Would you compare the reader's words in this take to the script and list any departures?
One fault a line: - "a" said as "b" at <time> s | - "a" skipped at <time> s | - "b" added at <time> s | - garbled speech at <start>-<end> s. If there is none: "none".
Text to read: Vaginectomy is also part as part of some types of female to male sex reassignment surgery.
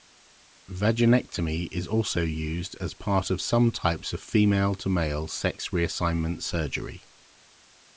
- "part" said as "used" at 2.2 s